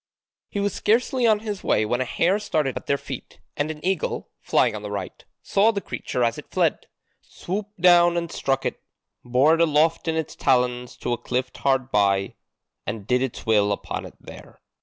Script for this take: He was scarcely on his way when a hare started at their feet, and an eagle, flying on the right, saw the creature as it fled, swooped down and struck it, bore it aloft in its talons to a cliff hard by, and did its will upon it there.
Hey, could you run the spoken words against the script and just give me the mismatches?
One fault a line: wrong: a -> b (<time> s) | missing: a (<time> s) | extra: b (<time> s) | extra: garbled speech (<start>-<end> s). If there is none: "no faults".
no faults